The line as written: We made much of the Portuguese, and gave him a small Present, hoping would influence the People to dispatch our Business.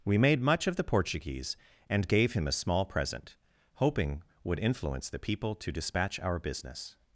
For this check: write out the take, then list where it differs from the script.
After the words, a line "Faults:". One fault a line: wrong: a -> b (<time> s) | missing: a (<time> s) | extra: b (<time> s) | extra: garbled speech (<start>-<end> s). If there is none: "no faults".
We made much of the Portuguese, and gave him a small Present, hoping would influence the People to dispatch our Business.
Faults:
no faults